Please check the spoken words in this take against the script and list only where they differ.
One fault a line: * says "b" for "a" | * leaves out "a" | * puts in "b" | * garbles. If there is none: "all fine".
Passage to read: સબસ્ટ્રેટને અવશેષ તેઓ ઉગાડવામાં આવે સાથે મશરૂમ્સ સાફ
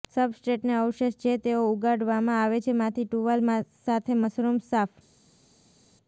* puts in "જે"
* puts in "છે માંથી ટુવાલ"